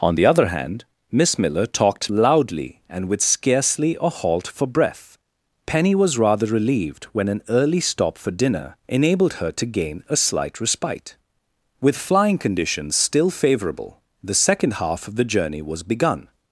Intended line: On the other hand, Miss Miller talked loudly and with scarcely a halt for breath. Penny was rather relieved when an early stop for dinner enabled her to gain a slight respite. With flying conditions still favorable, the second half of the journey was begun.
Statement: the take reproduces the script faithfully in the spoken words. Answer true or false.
true